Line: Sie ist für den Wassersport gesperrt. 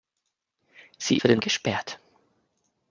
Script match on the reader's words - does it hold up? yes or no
no